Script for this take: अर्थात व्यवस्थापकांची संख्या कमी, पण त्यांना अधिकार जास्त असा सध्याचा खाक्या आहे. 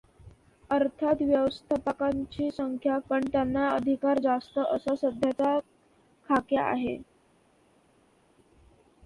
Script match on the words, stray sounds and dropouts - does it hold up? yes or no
no